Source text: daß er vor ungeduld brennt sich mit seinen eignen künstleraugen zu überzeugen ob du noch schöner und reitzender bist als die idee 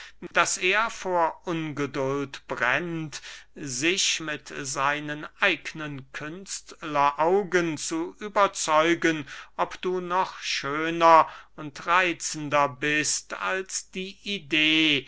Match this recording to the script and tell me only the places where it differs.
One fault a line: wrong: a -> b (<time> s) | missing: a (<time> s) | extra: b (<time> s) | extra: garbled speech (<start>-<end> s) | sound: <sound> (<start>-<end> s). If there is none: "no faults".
sound: dropout (0.3-0.3 s)